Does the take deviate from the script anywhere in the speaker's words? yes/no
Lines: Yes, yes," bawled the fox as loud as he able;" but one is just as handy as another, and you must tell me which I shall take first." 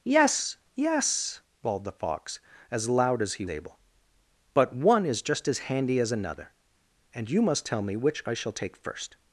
no